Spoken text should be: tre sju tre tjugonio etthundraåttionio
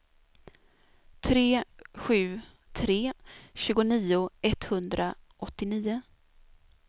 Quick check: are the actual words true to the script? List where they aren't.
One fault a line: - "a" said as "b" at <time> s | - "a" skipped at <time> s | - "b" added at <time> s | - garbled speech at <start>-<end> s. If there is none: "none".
none